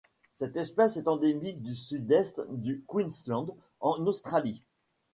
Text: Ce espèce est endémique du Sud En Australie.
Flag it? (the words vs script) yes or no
yes